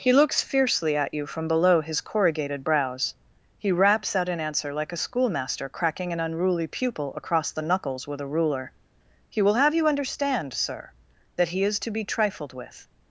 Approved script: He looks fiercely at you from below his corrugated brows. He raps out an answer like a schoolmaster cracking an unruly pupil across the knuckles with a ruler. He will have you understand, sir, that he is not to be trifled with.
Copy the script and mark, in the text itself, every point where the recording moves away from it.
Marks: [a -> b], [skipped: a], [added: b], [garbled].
He looks fiercely at you from below his corrugated brows. He raps out an answer like a schoolmaster cracking an unruly pupil across the knuckles with a ruler. He will have you understand, sir, that he is [skipped: not] to be trifled with.